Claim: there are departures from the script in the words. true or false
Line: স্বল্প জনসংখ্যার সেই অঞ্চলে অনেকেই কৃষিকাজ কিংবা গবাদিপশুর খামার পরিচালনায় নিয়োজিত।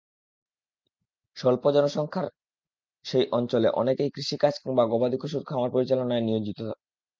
false